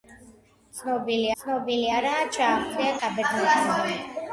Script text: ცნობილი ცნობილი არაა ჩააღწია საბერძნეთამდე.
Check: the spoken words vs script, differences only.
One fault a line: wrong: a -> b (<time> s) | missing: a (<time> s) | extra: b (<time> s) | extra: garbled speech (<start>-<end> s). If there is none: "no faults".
no faults